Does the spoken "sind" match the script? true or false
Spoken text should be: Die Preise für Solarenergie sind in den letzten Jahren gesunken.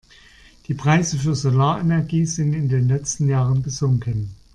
true